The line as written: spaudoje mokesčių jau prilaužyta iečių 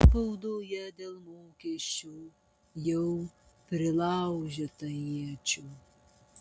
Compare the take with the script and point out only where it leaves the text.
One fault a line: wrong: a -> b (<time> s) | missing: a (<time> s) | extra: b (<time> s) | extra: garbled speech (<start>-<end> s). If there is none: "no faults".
extra: dėl (1.0 s)